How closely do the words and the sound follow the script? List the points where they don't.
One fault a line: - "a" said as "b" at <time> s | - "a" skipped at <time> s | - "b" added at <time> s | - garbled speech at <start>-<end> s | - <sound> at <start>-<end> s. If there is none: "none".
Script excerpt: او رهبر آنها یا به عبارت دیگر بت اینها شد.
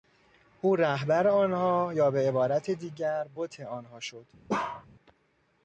- "اینها" said as "آنها" at 3.6 s
- bark at 4.5-4.9 s